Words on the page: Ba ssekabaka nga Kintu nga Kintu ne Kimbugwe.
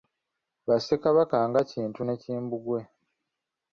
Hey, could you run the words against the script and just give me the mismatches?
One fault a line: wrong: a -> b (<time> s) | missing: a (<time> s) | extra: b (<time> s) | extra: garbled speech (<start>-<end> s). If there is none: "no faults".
missing: nga Kintu (2.0 s)